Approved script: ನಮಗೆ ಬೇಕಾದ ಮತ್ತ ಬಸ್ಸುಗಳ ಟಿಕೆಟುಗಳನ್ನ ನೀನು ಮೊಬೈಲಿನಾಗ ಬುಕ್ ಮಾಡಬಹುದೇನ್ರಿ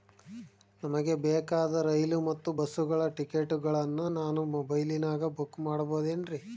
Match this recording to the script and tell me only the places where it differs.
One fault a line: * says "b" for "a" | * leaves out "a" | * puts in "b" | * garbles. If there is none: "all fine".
* puts in "ರೈಲು"
* says "ನಾನು" for "ನೀನು"